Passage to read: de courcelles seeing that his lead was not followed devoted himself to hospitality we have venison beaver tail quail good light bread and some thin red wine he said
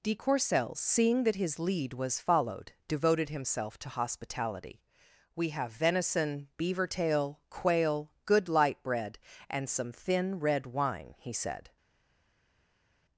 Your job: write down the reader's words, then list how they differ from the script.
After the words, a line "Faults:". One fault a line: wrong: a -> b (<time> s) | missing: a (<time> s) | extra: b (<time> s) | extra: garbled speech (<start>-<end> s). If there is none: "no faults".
de courcelles seeing that his lead was followed devoted himself to hospitality we have venison beaver tail quail good light bread and some thin red wine he said
Faults:
missing: not (2.2 s)